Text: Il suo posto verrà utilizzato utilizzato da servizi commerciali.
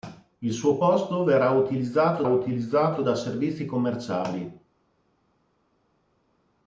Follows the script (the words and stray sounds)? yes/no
yes